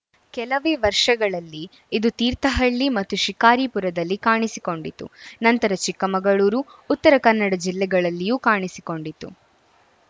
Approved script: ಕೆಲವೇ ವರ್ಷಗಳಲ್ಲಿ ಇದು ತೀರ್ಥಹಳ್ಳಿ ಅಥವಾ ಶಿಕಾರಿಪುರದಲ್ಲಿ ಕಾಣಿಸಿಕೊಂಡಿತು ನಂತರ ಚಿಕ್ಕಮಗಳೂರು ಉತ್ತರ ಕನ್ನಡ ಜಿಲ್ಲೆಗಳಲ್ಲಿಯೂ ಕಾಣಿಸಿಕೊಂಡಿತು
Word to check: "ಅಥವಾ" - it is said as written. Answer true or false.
false